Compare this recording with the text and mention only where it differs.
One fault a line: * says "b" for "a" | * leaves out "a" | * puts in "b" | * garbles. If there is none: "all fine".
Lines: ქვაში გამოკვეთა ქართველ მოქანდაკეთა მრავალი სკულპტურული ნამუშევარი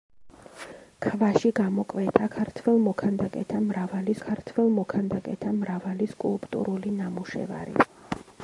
* puts in "ქართველ მოქანდაკეთა მრავალი"